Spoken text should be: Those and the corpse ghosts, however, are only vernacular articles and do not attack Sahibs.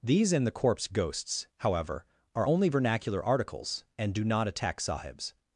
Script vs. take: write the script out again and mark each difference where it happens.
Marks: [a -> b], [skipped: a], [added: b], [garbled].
[Those -> These] and the corpse ghosts, however, are only vernacular articles and do not attack Sahibs.